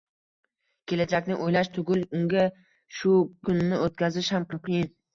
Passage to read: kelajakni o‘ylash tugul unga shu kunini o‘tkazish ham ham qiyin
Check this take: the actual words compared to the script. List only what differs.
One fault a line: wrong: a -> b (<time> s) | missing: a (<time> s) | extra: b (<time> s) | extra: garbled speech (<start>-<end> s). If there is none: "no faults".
no faults